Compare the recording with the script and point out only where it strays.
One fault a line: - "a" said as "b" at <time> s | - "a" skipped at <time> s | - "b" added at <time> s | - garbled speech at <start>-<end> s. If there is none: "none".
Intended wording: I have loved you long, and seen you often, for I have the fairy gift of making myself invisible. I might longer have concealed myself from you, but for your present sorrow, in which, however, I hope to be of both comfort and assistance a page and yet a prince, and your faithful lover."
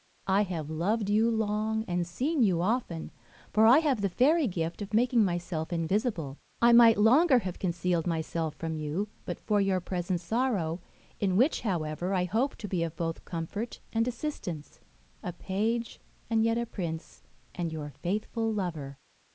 none